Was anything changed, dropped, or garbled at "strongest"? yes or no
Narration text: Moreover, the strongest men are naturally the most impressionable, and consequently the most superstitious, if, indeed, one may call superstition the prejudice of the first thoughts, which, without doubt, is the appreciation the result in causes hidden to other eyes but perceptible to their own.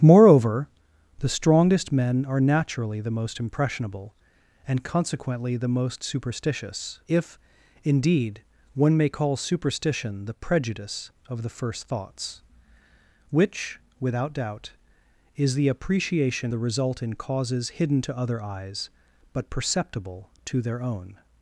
no